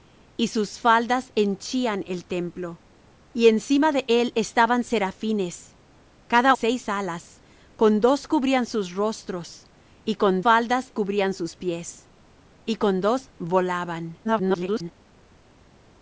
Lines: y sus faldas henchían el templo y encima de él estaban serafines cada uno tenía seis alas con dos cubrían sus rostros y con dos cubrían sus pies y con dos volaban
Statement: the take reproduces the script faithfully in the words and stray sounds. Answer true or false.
false